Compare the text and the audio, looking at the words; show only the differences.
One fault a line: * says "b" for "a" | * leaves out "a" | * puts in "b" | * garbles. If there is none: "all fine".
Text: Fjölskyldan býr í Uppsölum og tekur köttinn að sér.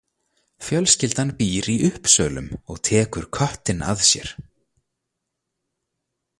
all fine